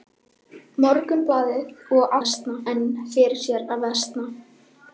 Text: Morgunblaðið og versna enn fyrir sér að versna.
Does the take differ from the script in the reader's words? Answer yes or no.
no